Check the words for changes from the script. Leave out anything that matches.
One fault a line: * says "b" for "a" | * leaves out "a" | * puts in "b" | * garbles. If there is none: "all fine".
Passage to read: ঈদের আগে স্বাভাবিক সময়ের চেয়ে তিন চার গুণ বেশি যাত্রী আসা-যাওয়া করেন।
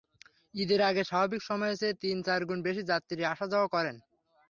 all fine